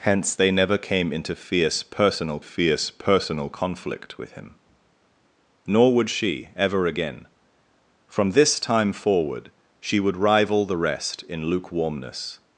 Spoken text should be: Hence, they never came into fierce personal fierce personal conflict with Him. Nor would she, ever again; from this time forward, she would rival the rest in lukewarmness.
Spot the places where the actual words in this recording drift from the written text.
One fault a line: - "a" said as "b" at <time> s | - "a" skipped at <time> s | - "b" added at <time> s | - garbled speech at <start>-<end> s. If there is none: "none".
none